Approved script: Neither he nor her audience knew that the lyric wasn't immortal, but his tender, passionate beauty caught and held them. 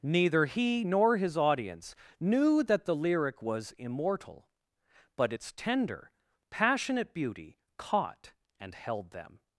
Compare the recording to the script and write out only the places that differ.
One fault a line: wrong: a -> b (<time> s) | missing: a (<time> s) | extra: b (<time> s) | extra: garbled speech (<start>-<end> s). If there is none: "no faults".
wrong: her -> his (1.2 s)
wrong: wasn't -> was (3.4 s)
wrong: his -> its (5.3 s)